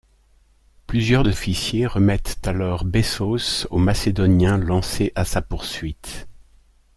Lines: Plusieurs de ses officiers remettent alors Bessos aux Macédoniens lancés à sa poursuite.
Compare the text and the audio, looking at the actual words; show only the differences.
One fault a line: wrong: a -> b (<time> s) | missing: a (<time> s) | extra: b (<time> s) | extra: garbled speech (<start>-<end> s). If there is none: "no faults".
missing: ses (1.3 s)